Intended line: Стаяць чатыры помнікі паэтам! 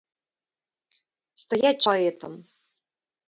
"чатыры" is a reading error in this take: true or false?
true